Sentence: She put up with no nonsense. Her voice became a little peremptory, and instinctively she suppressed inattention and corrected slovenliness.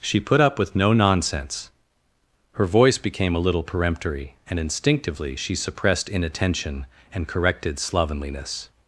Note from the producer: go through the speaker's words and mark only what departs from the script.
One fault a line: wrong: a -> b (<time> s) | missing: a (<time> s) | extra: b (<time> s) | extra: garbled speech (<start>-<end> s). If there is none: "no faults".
no faults